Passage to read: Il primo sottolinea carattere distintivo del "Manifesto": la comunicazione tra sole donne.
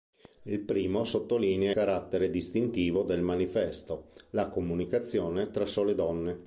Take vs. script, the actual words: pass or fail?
pass